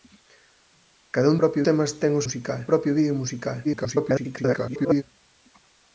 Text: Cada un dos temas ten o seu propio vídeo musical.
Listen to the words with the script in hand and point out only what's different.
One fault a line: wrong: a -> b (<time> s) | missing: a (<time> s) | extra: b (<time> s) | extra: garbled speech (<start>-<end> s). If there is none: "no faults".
wrong: dos -> propio (1.4 s)
wrong: seu -> musical (2.2 s)
extra: garbled speech (3.6-5.0 s)